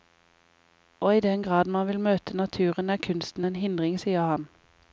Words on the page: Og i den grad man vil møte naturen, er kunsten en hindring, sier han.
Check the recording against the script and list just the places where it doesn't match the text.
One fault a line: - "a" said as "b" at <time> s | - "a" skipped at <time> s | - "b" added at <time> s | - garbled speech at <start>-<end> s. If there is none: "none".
none